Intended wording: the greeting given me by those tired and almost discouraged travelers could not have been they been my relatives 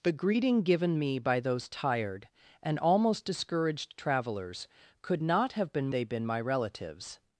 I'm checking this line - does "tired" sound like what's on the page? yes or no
yes